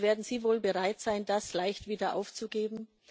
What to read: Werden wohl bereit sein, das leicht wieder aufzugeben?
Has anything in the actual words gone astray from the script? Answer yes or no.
yes